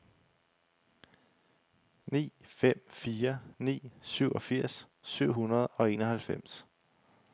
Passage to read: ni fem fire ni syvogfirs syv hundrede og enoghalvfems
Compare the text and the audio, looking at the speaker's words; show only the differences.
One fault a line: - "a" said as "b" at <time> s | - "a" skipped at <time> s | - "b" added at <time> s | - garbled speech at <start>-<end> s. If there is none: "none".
none